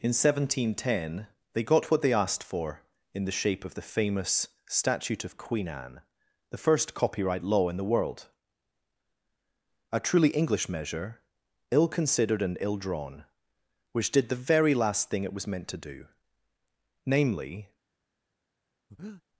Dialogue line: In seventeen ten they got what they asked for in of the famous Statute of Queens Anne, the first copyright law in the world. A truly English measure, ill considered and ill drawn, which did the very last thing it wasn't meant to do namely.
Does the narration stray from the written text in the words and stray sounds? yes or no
yes